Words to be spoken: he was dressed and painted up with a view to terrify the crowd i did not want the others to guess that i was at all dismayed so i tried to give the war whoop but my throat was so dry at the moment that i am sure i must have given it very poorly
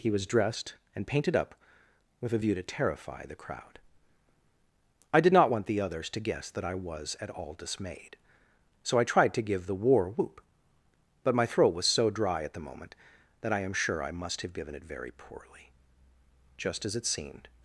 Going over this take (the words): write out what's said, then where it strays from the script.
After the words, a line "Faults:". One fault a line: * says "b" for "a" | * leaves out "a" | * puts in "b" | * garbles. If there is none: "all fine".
he was dressed and painted up with a view to terrify the crowd i did not want the others to guess that i was at all dismayed so i tried to give the war whoop but my throat was so dry at the moment that i am sure i must have given it very poorly just as it seemed
Faults:
* puts in "just as it seemed"